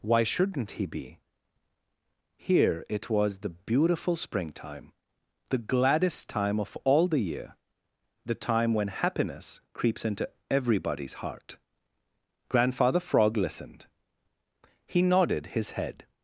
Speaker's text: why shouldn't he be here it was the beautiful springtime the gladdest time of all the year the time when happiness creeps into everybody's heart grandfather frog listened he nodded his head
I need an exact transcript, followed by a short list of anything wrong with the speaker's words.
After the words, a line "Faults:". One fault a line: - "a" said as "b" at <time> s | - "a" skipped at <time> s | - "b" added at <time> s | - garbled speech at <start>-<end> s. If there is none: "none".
why shouldn't he be here it was the beautiful springtime the gladdest time of all the year the time when happiness creeps into everybody's heart grandfather frog listened he nodded his head
Faults:
none